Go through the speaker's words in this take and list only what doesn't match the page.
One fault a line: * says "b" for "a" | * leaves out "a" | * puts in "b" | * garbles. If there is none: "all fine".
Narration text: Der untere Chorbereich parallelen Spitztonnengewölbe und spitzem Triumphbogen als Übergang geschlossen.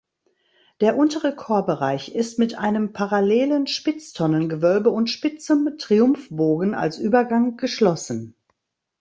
* puts in "ist mit einem"